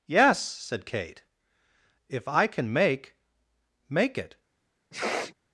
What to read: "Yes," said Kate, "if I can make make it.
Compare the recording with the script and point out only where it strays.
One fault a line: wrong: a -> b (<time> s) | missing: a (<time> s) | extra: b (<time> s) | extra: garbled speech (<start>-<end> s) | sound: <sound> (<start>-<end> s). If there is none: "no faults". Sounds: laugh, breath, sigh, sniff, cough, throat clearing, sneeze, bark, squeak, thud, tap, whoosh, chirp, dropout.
sound: sniff (4.9-5.3 s)